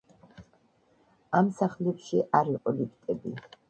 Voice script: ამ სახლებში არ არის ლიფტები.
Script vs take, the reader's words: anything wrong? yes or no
yes